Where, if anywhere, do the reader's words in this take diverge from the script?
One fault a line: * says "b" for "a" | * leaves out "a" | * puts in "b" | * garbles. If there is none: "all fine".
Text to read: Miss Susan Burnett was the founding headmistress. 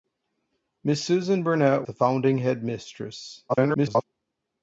* leaves out "was"
* garbles